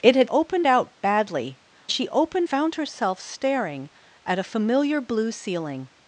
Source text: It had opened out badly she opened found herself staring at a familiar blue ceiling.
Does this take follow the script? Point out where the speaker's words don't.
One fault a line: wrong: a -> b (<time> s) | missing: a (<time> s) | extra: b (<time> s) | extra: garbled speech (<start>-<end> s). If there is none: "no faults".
no faults